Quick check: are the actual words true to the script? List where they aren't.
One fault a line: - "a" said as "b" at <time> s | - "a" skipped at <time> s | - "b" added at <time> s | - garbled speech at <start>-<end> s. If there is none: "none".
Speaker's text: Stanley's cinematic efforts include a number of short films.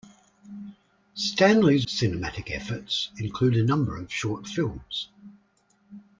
none